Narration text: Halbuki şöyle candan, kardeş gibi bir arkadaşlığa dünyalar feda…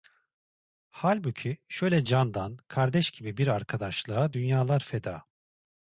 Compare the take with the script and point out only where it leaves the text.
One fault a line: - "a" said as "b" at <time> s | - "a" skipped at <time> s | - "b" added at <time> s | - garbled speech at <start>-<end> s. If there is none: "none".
none